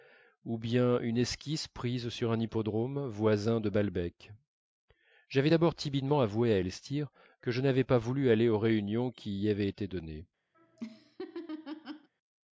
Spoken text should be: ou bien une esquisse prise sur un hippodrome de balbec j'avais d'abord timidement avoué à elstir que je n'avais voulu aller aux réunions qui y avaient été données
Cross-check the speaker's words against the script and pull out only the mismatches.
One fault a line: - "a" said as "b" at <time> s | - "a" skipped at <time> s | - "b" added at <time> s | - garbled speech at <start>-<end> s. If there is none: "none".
- "voisin" added at 3.1 s
- "pas" added at 7.8 s